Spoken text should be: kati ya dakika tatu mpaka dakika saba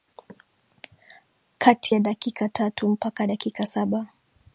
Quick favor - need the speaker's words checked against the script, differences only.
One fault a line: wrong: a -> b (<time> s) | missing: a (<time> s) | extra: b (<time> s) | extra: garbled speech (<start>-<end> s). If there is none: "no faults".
no faults